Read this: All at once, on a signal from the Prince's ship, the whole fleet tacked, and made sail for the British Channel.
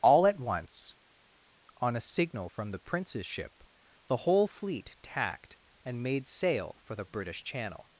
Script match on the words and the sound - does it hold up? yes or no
yes